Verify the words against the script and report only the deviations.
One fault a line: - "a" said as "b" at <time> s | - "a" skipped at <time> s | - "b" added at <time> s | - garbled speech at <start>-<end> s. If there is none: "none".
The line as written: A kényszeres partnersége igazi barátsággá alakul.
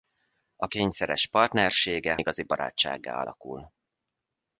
none